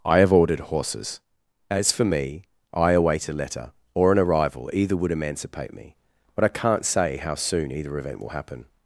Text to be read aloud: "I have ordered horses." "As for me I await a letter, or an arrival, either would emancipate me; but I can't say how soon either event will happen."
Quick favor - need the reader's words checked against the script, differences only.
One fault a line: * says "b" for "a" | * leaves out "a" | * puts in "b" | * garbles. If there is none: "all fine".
all fine